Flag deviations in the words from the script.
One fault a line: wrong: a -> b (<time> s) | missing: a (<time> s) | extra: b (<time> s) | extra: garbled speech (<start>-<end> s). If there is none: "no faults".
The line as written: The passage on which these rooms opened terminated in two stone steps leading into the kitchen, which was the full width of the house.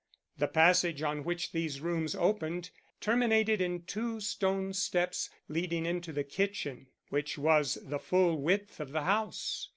no faults